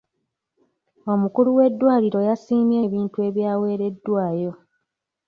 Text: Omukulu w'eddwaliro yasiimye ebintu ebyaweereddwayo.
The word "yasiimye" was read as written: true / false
true